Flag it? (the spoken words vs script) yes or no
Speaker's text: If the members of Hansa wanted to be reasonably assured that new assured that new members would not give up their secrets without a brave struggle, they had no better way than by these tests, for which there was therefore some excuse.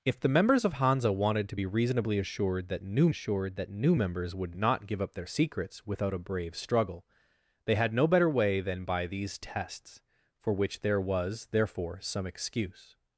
no